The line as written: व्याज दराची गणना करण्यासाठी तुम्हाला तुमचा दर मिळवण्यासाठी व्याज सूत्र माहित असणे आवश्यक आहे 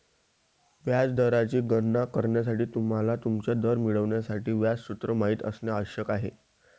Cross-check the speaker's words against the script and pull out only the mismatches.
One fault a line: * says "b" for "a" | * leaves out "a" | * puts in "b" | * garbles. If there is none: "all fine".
all fine